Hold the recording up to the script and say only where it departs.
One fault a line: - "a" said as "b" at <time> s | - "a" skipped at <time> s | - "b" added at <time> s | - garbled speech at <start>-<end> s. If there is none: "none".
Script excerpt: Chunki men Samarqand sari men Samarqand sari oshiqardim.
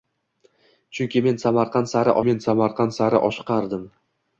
none